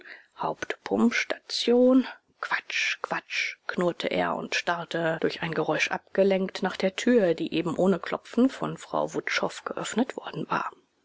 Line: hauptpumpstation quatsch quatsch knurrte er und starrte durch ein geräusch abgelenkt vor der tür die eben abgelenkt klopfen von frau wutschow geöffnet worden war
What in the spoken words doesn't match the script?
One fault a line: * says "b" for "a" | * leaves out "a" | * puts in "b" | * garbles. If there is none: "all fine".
* says "nach" for "vor"
* says "ohne" for "abgelenkt"